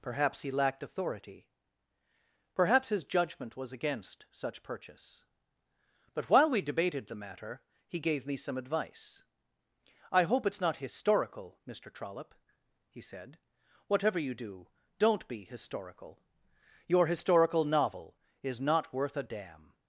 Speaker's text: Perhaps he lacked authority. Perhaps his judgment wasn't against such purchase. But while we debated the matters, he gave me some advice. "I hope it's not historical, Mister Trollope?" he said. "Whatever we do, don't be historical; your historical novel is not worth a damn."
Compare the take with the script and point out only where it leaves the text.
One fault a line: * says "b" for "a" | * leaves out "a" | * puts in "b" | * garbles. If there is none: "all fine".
* says "was" for "wasn't"
* says "matter" for "matters"
* says "you" for "we"